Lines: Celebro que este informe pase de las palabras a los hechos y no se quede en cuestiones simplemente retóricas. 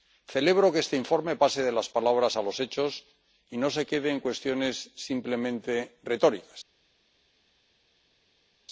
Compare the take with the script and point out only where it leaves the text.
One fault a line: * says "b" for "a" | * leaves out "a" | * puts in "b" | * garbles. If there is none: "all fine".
all fine